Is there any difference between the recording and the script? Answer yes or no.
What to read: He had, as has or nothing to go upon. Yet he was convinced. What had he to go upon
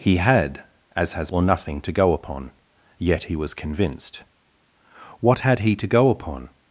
no